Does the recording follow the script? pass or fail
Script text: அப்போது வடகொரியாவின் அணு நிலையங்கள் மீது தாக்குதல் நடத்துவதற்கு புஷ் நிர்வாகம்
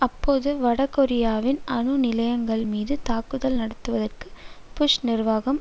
pass